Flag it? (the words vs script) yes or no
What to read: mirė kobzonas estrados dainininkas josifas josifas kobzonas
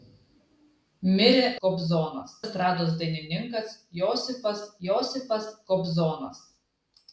no